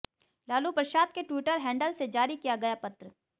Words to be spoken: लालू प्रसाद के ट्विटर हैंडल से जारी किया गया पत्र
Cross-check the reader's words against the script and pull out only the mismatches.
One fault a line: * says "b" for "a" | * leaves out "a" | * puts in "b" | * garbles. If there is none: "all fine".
all fine